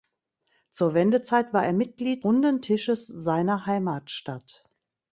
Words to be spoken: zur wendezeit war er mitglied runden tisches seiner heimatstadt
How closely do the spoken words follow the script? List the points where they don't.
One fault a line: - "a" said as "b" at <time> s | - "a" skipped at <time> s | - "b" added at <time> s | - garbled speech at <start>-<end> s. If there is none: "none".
none